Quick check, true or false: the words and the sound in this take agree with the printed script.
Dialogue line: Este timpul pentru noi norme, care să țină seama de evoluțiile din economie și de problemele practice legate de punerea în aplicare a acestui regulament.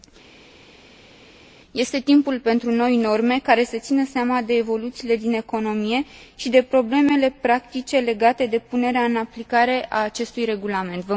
true